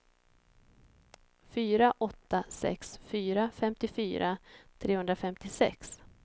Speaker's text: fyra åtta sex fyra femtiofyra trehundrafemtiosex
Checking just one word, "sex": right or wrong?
right